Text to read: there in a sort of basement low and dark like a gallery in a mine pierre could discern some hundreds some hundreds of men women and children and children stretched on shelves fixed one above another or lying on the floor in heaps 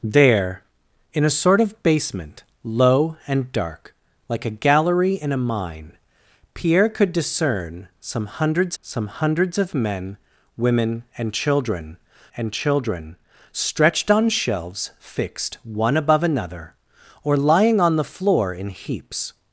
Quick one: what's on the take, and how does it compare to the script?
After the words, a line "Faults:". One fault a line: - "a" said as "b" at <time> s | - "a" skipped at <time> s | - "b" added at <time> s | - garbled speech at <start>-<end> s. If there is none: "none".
there in a sort of basement low and dark like a gallery in a mine pierre could discern some hundreds some hundreds of men women and children and children stretched on shelves fixed one above another or lying on the floor in heaps
Faults:
none